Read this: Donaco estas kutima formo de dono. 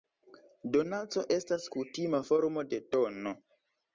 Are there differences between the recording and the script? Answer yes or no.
no